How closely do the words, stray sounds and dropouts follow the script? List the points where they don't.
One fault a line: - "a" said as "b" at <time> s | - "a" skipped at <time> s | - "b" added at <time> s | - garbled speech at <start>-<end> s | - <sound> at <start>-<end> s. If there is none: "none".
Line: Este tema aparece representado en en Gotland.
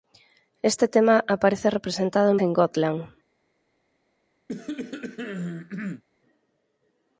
- cough at 4.5-6.0 s